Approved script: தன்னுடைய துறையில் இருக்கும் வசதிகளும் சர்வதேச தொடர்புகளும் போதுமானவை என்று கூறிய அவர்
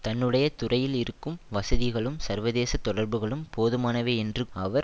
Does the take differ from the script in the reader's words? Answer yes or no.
yes